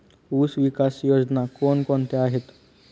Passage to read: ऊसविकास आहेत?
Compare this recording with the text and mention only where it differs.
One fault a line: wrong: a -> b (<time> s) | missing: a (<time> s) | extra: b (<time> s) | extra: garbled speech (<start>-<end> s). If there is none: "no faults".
extra: योजना कोण कोणत्या (1.0 s)